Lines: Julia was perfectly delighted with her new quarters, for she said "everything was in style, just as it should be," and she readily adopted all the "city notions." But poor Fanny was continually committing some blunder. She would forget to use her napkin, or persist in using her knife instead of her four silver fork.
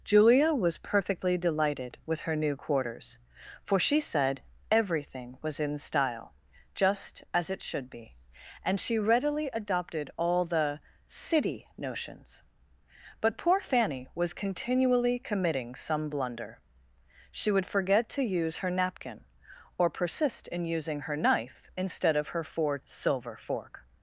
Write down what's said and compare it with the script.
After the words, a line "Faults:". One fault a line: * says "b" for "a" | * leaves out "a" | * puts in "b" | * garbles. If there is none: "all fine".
Julia was perfectly delighted with her new quarters, for she said "everything was in style, just as it should be," and she readily adopted all the "city notions." But poor Fanny was continually committing some blunder. She would forget to use her napkin, or persist in using her knife instead of her four silver fork.
Faults:
all fine